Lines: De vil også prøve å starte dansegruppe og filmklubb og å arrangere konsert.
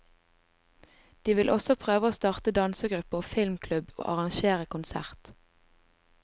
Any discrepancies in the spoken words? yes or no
yes